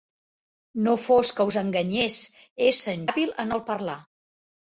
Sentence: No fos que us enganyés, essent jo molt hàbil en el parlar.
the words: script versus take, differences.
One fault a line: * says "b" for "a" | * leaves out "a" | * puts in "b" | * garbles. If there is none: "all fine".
* leaves out "jo molt"